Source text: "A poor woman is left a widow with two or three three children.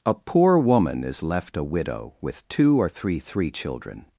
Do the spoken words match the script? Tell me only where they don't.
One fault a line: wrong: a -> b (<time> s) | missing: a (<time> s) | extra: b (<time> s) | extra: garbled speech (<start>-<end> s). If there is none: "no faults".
no faults